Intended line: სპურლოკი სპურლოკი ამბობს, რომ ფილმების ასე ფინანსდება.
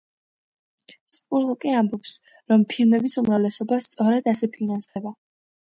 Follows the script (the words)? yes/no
no